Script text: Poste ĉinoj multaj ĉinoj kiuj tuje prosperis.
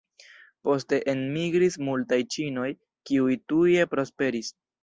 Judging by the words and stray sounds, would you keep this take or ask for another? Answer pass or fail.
fail